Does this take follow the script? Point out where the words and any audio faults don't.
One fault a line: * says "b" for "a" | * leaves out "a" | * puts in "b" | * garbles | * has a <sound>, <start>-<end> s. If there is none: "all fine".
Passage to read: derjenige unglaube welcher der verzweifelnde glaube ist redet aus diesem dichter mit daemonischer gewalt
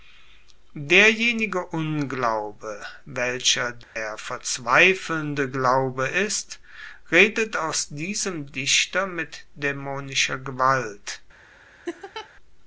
* has a dropout, 3.8-4.0 s
* has a laugh, 11.9-12.3 s